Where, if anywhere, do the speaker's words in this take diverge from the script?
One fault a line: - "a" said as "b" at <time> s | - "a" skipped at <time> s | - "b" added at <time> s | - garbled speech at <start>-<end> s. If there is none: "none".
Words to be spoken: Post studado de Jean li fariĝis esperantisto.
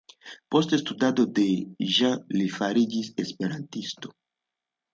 none